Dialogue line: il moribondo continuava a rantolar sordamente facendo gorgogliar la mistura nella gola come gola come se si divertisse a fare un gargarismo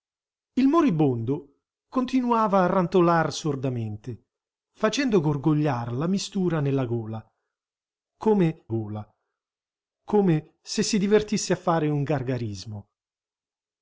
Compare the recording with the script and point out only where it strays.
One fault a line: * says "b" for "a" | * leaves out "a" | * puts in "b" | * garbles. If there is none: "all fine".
all fine